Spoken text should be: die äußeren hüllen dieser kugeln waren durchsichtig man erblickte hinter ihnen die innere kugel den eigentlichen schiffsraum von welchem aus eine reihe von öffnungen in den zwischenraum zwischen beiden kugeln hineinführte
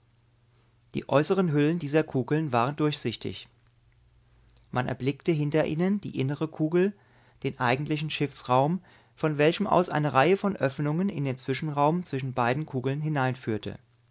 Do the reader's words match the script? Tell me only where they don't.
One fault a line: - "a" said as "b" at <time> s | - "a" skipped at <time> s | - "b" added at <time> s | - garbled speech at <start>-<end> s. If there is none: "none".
none